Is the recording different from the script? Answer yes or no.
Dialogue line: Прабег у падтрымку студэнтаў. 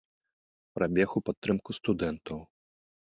no